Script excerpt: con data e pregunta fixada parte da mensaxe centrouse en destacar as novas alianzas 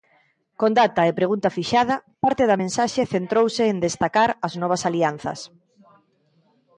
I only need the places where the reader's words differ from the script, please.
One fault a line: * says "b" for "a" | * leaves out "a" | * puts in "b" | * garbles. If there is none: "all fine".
all fine